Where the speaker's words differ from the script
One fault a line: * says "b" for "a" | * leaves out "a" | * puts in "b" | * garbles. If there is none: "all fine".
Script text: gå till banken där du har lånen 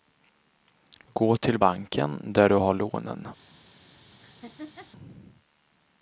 all fine